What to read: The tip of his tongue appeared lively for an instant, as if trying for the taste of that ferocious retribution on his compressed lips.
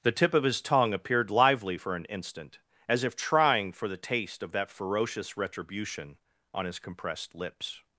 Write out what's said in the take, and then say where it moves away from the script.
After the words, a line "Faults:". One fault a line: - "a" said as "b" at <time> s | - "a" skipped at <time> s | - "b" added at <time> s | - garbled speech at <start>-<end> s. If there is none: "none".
The tip of his tongue appeared lively for an instant, as if trying for the taste of that ferocious retribution on his compressed lips.
Faults:
none